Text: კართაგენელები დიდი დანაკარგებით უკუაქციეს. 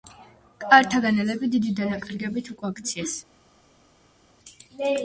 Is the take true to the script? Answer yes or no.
yes